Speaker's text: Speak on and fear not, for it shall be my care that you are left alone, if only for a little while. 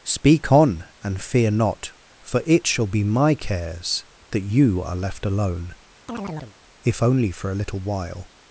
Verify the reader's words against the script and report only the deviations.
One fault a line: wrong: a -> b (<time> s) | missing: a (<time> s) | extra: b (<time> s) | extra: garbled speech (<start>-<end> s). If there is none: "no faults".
wrong: care -> cares (3.4 s)